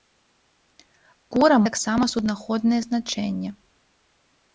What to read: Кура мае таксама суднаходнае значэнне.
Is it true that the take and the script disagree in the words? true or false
true